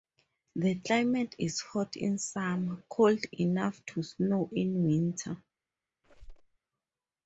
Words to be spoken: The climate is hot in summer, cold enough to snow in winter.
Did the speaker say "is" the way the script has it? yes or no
yes